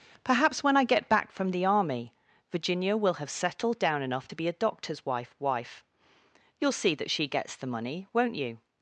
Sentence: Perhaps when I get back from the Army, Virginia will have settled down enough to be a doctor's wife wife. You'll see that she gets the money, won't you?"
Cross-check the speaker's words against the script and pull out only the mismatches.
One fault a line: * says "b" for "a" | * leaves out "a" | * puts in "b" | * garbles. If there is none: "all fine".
all fine